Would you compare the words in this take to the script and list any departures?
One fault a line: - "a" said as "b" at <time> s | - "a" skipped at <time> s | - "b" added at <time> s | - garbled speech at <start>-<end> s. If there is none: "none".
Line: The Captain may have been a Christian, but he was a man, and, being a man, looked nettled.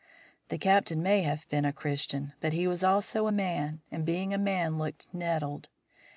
- "also" added at 2.8 s